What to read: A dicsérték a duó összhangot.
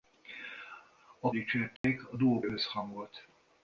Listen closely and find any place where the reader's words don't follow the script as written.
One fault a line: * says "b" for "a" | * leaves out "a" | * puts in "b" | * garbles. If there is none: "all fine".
all fine